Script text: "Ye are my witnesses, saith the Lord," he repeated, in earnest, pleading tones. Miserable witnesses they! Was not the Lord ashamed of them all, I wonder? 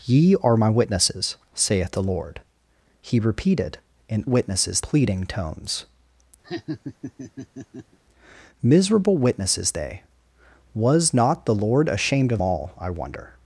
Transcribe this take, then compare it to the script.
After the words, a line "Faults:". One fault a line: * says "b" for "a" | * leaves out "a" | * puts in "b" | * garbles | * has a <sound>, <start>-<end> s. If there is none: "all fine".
"Ye are my witnesses, saith the Lord," he repeated, in witnesses, pleading tones. Miserable witnesses they! Was not the Lord ashamed of all, I wonder?
Faults:
* says "witnesses" for "earnest"
* has a laugh, 6.4-8.0 s
* leaves out "them"